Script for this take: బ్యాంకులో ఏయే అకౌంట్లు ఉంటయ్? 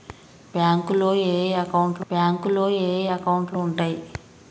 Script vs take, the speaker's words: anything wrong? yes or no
yes